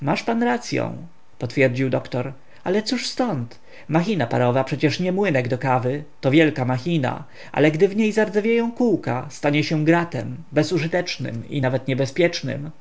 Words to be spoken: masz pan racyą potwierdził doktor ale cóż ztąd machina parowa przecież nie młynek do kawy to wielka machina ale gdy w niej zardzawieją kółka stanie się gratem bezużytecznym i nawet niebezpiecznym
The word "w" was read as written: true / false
true